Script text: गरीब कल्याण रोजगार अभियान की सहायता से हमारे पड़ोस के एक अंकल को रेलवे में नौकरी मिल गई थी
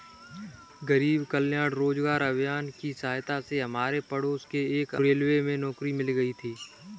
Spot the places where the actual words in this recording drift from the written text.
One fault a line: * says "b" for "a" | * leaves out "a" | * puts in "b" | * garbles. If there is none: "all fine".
* leaves out "अंकल को"